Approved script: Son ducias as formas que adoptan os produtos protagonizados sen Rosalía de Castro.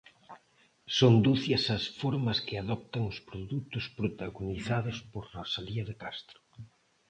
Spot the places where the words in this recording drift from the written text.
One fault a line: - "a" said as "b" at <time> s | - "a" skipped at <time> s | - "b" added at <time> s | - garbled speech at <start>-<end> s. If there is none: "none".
- "sen" said as "por" at 5.1 s